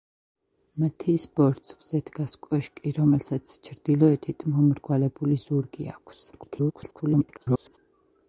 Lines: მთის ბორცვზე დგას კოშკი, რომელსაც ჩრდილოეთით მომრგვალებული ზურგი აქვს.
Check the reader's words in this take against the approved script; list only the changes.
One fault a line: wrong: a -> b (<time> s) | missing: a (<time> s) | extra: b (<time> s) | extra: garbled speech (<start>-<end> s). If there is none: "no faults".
extra: garbled speech (6.3-7.8 s)